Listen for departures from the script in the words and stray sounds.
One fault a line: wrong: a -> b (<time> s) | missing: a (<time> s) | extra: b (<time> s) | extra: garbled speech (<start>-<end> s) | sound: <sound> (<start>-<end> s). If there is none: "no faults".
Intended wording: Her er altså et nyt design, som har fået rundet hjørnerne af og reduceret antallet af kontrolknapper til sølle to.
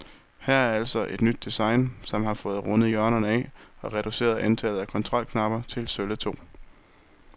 no faults